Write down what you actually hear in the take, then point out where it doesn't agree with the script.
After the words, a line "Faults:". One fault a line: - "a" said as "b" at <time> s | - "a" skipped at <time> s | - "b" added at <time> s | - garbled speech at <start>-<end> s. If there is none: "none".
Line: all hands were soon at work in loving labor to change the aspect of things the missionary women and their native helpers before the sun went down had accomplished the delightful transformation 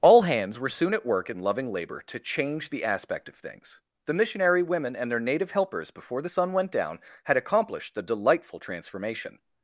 all hands were soon at work in loving labor to change the aspect of things the missionary women and their native helpers before the sun went down had accomplished the delightful transformation
Faults:
none